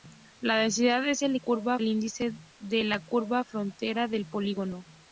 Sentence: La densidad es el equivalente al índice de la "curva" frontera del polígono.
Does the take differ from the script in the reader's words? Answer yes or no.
yes